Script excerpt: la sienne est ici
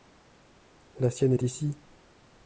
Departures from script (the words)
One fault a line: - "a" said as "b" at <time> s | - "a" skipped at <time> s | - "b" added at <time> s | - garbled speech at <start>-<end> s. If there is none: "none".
none